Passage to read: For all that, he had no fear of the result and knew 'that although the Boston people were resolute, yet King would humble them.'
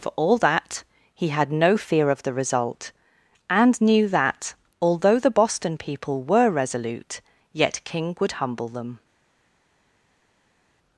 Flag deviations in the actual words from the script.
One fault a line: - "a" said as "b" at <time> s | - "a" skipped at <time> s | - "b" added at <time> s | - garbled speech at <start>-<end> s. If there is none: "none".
none